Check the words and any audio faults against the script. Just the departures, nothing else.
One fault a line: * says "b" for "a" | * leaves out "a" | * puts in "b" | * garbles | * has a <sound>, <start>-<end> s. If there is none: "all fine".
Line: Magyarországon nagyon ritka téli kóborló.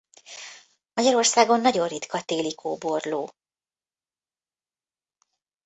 all fine